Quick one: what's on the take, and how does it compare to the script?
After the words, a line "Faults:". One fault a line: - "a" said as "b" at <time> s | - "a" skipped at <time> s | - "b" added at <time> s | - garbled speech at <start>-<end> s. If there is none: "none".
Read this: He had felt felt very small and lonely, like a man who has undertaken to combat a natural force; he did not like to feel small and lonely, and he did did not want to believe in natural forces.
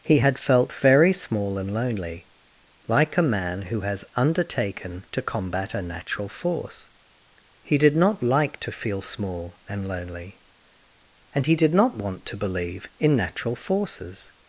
He had felt very small and lonely, like a man who has undertaken to combat a natural force; he did not like to feel small and lonely, and he did not want to believe in natural forces.
Faults:
- "felt" skipped at 0.7 s
- "did" skipped at 11.7 s